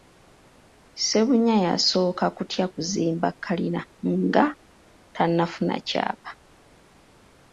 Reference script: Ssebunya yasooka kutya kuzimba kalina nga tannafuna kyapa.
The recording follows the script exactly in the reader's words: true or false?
true